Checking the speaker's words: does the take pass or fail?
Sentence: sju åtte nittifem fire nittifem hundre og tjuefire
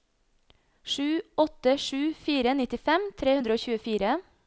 fail